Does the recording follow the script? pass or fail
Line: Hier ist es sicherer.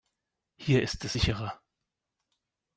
pass